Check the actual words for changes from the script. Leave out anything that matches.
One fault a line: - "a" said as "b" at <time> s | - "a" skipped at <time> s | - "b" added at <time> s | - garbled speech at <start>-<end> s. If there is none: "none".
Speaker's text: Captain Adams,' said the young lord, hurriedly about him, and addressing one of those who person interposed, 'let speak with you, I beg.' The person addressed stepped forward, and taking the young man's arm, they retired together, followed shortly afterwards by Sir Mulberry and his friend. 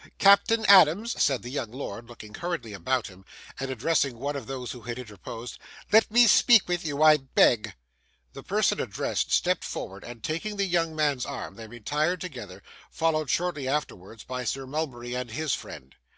- "looking" added at 2.1 s
- "person" said as "had" at 4.8 s
- "me" added at 6.1 s